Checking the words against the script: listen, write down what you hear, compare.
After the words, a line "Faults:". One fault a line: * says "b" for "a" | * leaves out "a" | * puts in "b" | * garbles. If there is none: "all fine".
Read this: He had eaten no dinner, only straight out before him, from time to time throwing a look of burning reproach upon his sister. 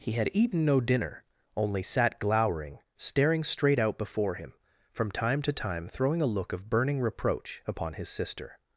He had eaten no dinner, only sat glowering, staring straight out before him, from time to time throwing a look of burning reproach upon his sister.
Faults:
* puts in "sat glowering staring"